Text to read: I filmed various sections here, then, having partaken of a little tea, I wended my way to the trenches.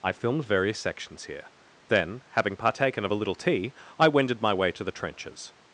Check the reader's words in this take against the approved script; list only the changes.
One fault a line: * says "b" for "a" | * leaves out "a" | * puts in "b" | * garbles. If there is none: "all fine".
all fine